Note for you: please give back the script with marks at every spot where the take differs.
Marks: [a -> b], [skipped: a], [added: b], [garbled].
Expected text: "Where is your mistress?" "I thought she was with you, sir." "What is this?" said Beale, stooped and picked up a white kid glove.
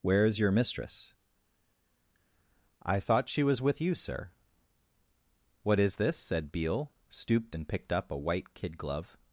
"Where is your mistress?" "I thought she was with you, sir." "What is this?" said Beale, stooped and picked up a white kid glove.